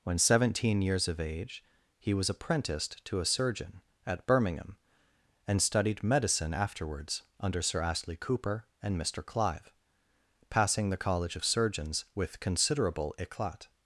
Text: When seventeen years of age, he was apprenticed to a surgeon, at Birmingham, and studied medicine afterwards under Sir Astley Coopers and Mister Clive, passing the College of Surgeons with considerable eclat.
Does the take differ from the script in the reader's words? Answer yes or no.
yes